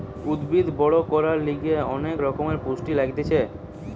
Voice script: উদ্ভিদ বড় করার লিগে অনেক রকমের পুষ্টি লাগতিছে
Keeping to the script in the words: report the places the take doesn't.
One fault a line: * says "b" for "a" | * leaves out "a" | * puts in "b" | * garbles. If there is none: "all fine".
all fine